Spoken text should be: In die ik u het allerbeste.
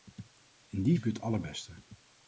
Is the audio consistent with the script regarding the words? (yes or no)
yes